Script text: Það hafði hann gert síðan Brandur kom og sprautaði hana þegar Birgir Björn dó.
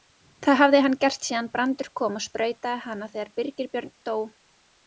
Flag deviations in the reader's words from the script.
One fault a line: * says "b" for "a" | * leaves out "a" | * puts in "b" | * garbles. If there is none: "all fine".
all fine